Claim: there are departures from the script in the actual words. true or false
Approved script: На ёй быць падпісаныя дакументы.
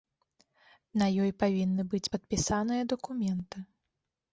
true